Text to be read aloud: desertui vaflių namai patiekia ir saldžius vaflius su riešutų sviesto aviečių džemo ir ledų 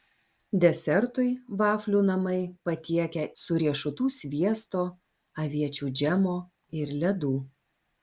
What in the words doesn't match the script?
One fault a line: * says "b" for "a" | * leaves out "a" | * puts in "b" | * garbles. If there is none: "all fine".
* leaves out "ir saldžius vaflius"